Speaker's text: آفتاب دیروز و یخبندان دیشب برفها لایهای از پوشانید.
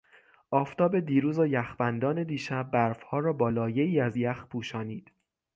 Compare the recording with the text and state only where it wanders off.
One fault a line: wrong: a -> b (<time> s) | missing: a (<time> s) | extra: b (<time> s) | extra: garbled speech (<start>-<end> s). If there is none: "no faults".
extra: را با (3.2 s)
extra: یخ (4.1 s)